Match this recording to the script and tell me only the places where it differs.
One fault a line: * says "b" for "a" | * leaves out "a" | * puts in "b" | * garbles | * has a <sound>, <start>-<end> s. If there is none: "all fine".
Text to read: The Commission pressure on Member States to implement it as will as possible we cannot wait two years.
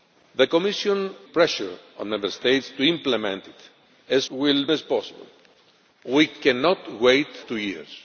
all fine